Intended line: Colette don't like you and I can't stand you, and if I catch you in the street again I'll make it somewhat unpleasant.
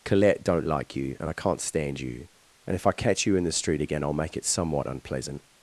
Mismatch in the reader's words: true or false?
false